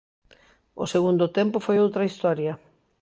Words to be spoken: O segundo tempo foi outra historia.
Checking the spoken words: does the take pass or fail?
pass